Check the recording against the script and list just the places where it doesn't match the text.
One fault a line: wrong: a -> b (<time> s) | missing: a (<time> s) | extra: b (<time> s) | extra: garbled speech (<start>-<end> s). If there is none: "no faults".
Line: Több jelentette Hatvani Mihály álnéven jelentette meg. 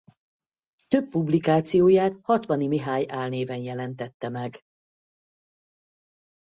wrong: jelentette -> publikációját (1.1 s)